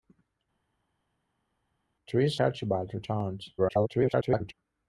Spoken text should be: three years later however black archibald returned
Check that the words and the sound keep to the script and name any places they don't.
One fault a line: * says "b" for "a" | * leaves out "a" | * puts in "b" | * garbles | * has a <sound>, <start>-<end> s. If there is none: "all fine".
* leaves out "later however black"
* garbles